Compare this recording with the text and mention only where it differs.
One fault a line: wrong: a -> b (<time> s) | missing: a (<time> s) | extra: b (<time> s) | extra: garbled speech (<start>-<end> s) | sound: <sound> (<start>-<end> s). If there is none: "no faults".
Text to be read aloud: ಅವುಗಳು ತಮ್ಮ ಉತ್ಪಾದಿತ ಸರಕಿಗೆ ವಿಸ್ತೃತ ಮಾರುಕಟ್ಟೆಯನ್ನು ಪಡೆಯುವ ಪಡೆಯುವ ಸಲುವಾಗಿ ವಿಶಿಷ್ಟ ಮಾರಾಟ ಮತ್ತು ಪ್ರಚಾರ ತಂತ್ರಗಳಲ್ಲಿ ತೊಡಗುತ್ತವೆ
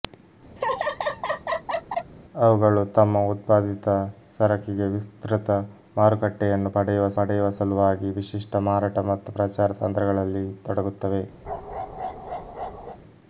sound: laugh (0.6-2.1 s)
sound: bark (11.4-13.0 s)